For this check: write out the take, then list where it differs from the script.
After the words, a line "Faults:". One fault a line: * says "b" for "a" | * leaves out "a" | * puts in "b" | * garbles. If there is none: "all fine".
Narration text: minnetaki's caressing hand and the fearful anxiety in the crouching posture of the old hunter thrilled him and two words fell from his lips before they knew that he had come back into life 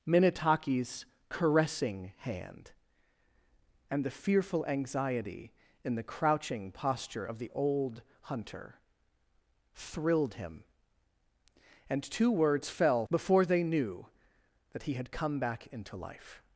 minnetaki's caressing hand and the fearful anxiety in the crouching posture of the old hunter thrilled him and two words fell before they knew that he had come back into life
Faults:
* leaves out "from his lips"